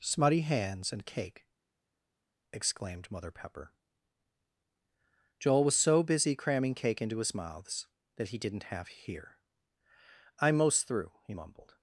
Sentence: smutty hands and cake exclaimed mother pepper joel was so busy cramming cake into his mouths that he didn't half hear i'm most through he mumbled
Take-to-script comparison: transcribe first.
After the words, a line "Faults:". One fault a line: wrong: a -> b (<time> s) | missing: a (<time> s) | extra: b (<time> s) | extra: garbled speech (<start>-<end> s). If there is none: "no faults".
smutty hands and cake exclaimed mother pepper joel was so busy cramming cake into his mouths that he didn't half hear i'm most through he mumbled
Faults:
no faults